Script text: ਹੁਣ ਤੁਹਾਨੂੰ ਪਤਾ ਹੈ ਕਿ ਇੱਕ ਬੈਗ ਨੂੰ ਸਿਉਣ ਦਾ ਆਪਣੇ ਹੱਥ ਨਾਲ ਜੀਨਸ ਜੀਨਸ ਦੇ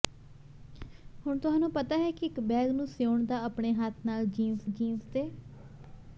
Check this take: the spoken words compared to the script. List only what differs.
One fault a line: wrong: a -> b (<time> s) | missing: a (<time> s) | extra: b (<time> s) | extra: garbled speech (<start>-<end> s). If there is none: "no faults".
no faults